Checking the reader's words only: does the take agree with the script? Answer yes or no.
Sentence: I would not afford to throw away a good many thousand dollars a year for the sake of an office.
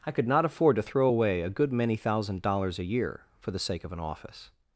no